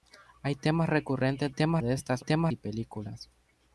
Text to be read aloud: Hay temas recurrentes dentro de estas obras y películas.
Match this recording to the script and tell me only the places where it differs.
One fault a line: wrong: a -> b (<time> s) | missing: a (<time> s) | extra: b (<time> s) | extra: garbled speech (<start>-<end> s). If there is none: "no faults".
wrong: dentro -> temas (1.5 s)
wrong: obras -> temas (2.2 s)